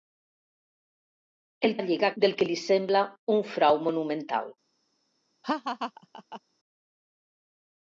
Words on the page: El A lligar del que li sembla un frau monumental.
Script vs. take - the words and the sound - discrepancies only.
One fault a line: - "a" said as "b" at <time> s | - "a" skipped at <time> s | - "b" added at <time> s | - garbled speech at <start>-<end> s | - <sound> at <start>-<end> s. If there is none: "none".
- laugh at 5.4-6.4 s